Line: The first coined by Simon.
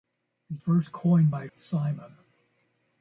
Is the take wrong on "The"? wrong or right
right